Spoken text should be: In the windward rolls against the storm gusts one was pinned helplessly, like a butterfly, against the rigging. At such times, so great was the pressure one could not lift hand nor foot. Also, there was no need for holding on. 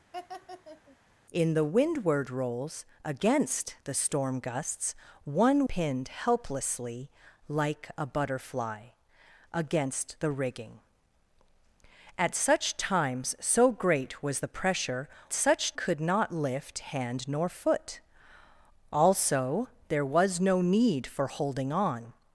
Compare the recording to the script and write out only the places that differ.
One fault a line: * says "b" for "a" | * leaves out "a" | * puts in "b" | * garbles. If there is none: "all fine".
* leaves out "was"
* says "such" for "one"